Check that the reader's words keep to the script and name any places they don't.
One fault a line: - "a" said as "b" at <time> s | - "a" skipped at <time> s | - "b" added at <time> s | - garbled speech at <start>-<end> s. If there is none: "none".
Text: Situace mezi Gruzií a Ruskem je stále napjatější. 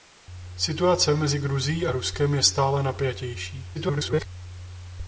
- garbled speech at 3.7-4.3 s